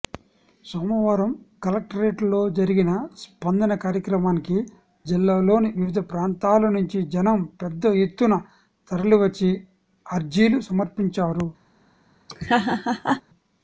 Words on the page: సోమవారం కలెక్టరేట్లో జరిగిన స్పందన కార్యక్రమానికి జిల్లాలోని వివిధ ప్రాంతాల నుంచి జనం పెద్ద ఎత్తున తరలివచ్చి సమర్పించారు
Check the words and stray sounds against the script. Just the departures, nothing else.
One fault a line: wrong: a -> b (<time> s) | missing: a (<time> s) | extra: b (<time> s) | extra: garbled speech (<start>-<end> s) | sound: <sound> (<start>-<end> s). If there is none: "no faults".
extra: అర్జీలు (10.1 s)
sound: laugh (12.3-13.2 s)